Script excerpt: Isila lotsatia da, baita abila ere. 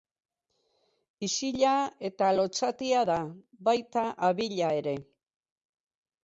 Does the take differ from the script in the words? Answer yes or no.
yes